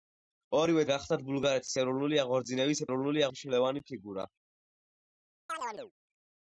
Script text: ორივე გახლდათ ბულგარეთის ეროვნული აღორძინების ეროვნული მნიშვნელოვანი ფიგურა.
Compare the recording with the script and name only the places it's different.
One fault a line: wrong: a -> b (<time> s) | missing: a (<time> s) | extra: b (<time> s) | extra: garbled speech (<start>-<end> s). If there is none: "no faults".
no faults